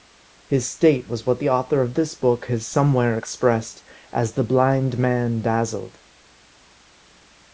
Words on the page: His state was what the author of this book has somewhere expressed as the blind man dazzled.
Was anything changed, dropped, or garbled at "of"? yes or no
no